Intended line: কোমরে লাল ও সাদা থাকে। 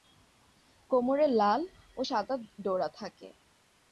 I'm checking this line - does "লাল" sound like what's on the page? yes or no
yes